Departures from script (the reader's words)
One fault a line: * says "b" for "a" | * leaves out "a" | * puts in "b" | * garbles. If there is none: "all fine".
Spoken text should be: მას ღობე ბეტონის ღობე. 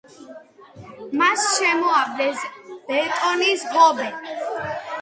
* says "შემოავლეს" for "ღობე"